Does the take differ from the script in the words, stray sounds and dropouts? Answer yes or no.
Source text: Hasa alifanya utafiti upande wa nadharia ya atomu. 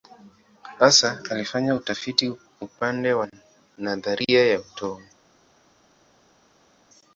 no